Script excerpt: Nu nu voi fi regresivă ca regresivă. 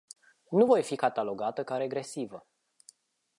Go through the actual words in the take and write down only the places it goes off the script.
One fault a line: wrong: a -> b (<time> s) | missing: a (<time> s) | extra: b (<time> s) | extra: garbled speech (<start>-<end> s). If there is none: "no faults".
missing: nu (0.7 s)
wrong: regresivă -> catalogată (1.0 s)